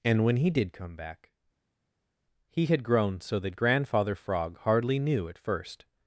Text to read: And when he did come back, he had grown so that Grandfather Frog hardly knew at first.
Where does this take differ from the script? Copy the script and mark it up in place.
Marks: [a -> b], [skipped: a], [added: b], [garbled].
And when he did come back, he had grown so that Grandfather Frog hardly knew at first.